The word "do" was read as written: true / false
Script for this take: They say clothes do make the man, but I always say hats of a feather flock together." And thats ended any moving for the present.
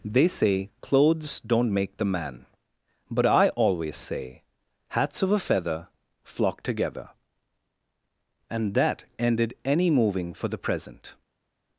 false